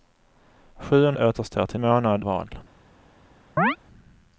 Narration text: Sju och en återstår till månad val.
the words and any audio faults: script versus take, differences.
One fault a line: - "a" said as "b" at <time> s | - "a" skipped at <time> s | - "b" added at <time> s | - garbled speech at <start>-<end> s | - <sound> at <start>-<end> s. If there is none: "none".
- chirp at 3.6-3.8 s